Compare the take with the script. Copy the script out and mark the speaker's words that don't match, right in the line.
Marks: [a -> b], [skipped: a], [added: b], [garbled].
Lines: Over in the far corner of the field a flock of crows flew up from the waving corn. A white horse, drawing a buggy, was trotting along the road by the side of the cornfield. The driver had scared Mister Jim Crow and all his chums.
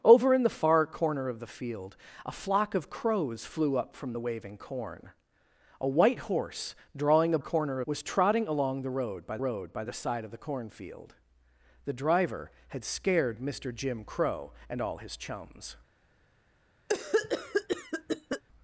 Over in the far corner of the field a flock of crows flew up from the waving corn. A white horse, drawing a [buggy, -> corner] was trotting along the road by [added: road by] the side of the cornfield. The driver had scared Mister Jim Crow and all his chums.